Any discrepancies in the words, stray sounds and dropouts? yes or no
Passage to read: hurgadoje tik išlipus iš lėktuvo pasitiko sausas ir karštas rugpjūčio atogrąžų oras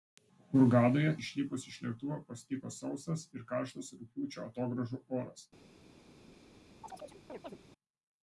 yes